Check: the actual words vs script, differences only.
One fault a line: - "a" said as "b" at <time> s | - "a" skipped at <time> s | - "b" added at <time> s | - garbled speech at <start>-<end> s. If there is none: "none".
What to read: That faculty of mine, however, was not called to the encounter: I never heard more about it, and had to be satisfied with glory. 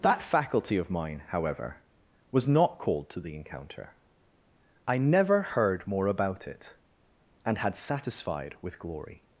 - "to be" skipped at 7.8 s